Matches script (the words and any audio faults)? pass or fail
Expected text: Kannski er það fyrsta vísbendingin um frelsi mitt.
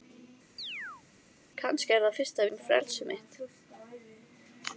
fail